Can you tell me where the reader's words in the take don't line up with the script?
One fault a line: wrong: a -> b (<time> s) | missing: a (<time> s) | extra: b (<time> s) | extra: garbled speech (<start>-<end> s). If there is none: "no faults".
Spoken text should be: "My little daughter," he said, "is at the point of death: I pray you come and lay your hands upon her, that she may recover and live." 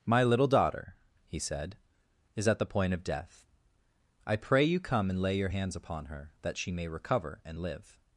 no faults